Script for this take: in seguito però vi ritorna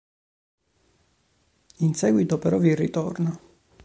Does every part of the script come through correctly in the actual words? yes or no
yes